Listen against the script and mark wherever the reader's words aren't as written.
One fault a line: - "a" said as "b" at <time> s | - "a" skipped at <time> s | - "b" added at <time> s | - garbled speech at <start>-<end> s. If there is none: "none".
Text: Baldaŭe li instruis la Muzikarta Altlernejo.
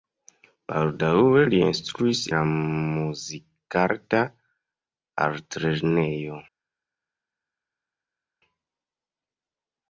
none